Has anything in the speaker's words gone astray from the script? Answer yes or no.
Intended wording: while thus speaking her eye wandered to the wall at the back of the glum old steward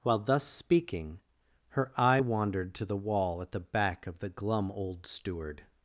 no